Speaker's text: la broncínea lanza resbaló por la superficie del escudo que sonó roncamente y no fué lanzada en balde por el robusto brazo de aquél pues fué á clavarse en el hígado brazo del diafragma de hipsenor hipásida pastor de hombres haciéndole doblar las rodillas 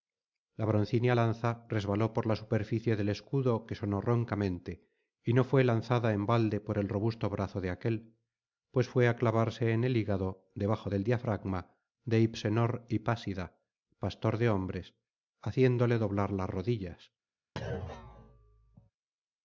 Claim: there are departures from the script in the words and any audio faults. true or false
true